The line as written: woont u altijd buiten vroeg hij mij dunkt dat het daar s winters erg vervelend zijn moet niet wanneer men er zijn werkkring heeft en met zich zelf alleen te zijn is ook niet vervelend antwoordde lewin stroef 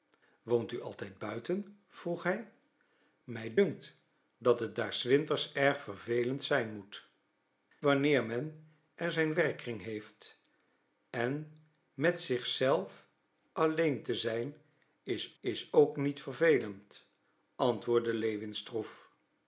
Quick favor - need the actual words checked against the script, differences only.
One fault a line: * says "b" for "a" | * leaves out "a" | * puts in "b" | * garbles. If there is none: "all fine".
* leaves out "niet"
* puts in "is"